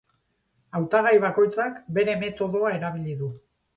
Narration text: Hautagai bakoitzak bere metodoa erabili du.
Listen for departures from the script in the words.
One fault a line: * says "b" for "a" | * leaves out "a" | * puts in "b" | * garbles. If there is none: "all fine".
all fine